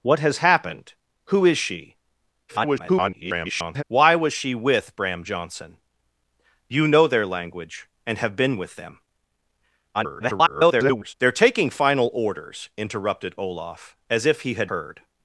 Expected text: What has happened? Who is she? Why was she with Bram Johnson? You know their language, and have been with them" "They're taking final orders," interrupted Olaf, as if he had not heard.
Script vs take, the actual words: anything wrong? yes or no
yes